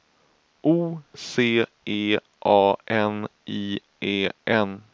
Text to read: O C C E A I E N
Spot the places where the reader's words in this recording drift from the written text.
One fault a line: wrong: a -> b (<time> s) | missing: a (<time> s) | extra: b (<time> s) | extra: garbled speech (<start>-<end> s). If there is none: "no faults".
missing: C (1.6 s)
extra: N (2.9 s)